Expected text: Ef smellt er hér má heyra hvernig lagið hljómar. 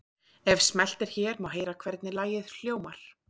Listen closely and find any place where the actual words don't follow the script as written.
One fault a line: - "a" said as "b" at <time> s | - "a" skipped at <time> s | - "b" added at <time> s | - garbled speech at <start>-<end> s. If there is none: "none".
none